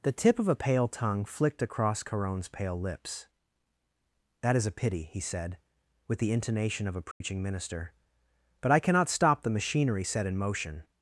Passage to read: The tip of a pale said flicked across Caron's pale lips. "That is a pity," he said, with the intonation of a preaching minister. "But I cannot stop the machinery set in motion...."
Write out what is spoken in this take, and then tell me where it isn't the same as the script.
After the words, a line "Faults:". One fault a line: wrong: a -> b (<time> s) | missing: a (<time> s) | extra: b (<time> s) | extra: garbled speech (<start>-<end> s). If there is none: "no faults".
The tip of a pale tongue flicked across Caron's pale lips. "That is a pity," he said, with the intonation of a preaching minister. "But I cannot stop the machinery set in motion...."
Faults:
wrong: said -> tongue (0.9 s)